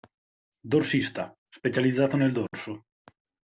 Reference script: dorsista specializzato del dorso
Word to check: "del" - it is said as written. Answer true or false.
false